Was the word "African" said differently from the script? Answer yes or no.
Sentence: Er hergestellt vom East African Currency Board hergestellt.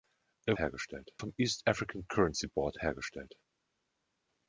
no